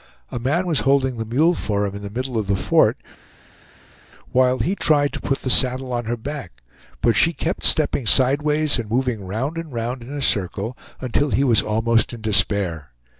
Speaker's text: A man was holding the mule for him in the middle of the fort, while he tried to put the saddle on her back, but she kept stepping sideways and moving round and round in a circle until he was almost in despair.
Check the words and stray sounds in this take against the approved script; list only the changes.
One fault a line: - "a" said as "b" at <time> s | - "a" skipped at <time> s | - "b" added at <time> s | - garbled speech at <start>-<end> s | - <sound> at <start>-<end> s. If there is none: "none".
none